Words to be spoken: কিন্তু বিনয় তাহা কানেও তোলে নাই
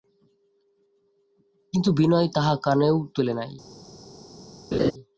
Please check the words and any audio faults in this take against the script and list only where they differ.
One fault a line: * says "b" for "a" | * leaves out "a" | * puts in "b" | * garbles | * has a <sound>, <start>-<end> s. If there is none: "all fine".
* has a laugh, 4.7-4.9 s